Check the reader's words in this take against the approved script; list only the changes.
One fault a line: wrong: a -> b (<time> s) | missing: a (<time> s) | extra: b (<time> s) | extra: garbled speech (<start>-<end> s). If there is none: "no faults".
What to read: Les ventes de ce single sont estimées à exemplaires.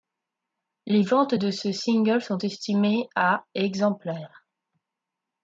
no faults